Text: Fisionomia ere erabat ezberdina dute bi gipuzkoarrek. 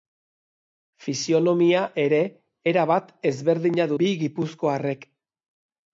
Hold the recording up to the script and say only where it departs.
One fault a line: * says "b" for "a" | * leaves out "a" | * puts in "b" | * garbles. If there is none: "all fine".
* leaves out "dute"